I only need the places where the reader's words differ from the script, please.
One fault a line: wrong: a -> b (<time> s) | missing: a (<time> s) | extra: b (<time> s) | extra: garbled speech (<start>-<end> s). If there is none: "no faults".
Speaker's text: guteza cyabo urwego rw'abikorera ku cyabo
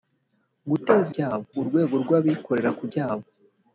no faults